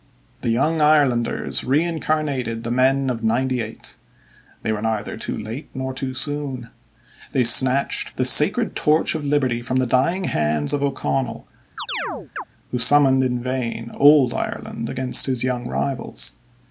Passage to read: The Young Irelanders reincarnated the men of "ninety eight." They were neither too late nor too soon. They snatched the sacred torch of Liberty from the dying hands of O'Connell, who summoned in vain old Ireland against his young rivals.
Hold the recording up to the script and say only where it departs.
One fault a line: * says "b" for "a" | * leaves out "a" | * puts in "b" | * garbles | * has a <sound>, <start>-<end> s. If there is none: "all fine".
* has a chirp, 11.8-12.4 s